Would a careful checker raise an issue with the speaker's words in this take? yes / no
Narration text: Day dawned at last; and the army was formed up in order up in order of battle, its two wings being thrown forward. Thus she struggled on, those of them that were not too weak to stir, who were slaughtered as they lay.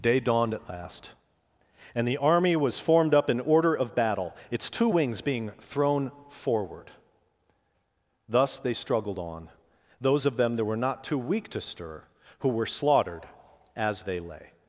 yes